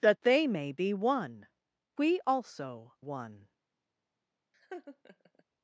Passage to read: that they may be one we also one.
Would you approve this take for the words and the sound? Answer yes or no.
no